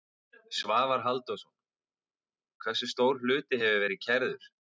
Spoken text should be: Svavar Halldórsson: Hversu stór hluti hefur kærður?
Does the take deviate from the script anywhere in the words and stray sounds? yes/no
yes